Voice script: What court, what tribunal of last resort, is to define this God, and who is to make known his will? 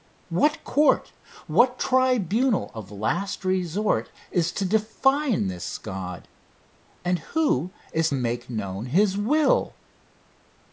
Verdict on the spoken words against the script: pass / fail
fail